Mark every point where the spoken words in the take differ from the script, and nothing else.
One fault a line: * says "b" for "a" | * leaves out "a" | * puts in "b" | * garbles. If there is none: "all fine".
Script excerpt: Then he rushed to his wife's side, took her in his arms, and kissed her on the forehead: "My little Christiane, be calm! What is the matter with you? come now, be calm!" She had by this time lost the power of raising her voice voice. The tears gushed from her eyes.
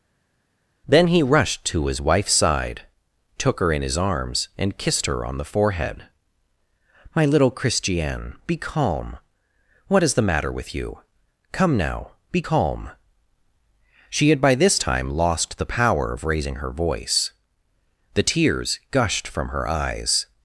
* leaves out "voice"